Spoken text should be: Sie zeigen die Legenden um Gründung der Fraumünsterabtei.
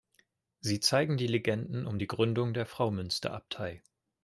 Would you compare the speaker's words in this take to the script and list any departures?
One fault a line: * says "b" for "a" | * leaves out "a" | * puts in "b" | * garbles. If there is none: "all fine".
* puts in "die"